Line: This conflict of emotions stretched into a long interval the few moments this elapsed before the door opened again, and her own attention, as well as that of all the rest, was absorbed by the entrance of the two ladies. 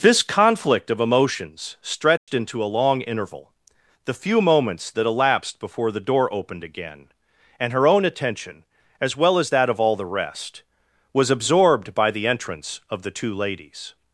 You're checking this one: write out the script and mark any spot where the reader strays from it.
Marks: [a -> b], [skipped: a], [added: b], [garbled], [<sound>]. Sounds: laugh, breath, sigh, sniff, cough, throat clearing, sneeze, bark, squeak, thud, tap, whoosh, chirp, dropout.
This conflict of emotions stretched [dropout] into a long interval the few moments [this -> that] elapsed before the door opened again, and her own attention, as well as that of all the rest, was absorbed by the entrance of the two ladies.